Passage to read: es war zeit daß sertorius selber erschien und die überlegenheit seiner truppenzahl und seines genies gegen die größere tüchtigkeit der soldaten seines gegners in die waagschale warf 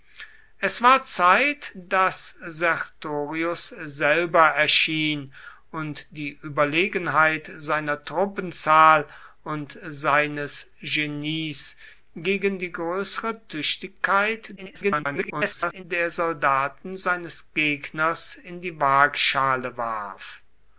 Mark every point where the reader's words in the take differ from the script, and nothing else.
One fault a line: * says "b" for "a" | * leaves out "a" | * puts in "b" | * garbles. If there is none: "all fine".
* garbles